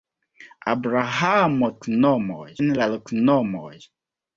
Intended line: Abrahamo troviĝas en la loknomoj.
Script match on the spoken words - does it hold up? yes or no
no